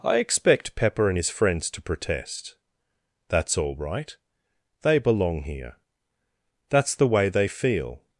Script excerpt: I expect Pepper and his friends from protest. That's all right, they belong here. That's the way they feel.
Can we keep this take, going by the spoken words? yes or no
no